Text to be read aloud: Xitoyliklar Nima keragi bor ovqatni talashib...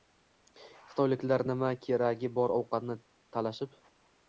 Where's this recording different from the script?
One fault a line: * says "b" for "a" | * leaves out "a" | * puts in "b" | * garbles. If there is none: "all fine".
all fine